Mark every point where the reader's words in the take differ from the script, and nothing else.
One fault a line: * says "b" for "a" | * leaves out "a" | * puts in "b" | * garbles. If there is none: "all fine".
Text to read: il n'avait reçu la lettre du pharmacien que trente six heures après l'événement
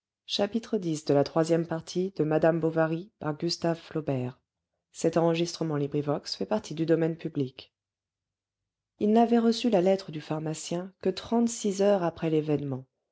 all fine